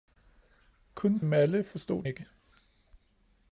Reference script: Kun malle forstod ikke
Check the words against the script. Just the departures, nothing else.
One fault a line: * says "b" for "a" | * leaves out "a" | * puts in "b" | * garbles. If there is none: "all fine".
all fine